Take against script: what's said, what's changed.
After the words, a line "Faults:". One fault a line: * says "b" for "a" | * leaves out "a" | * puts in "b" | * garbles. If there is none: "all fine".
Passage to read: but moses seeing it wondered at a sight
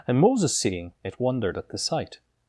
and moses seeing it wondered at the sight
Faults:
* says "and" for "but"
* says "the" for "a"